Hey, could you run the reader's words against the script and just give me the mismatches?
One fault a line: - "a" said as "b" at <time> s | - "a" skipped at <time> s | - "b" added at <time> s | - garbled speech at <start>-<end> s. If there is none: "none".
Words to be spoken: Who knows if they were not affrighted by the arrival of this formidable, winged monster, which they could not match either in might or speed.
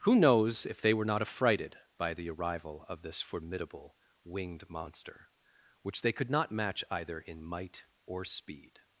none